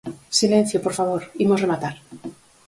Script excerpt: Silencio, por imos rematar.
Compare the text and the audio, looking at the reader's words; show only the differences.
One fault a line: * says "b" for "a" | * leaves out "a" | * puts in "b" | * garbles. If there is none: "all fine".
* puts in "favor"